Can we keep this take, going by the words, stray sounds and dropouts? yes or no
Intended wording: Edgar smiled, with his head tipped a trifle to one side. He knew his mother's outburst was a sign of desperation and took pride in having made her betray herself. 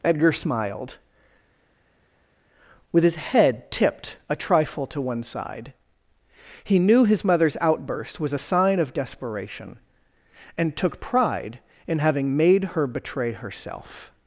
yes